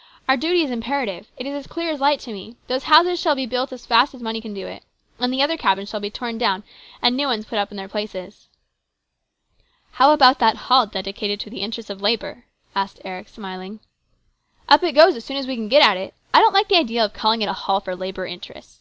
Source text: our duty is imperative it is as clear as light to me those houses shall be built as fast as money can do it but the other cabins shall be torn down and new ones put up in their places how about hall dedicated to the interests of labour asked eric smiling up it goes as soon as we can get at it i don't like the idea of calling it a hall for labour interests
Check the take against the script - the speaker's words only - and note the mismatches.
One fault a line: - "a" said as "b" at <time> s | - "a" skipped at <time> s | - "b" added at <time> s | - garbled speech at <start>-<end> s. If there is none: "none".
- "but" said as "and" at 5.2 s
- "that" added at 10.4 s